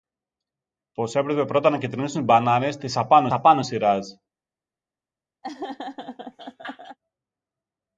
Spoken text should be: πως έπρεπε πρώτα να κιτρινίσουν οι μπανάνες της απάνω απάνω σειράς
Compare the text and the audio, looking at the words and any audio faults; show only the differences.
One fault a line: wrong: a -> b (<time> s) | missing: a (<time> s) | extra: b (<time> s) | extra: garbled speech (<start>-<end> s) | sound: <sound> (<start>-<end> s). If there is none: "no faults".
sound: laugh (5.4-7.0 s)